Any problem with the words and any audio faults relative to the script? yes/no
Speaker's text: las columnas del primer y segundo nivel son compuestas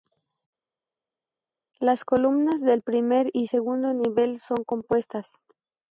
no